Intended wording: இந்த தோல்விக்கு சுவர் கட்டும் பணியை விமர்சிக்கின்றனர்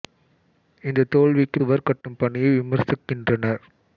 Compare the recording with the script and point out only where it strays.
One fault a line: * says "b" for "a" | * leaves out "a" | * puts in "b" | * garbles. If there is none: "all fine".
all fine